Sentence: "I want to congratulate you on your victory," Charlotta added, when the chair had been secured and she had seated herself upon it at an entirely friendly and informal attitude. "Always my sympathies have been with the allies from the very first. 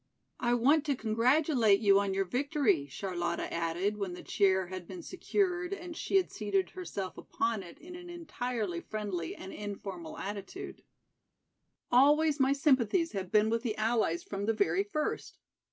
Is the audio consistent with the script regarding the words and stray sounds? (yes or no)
no